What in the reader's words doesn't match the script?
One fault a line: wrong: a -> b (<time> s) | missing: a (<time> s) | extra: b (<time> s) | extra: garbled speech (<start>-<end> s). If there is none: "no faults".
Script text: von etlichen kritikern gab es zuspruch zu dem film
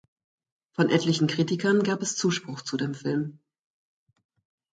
no faults